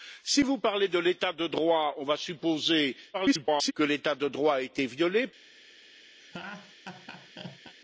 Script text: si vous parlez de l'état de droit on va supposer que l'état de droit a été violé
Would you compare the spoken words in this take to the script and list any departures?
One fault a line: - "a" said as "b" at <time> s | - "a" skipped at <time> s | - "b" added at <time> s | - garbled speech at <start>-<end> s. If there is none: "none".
- garbled speech at 3.1-3.7 s